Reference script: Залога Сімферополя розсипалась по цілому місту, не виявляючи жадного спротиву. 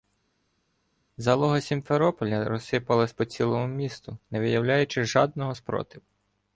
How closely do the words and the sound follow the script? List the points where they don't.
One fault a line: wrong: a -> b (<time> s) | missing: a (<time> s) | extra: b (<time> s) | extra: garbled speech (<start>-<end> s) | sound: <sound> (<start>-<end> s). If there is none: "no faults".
no faults